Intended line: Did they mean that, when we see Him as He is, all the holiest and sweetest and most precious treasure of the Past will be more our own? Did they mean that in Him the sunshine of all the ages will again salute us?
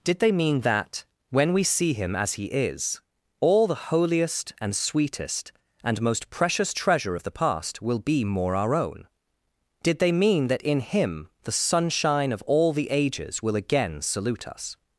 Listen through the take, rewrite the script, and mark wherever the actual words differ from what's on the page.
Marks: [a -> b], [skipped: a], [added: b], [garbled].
Did they mean that, when we see Him as He is, all the holiest and sweetest and most precious treasure of the Past will be more our own? Did they mean that in Him the sunshine of all the ages will again salute us?